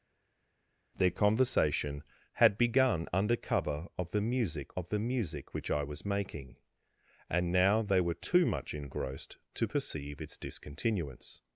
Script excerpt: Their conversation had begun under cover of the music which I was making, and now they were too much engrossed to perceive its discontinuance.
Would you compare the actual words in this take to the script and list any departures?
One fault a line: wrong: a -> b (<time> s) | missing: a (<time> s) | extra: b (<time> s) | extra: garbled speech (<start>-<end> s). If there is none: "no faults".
extra: of the music (4.7 s)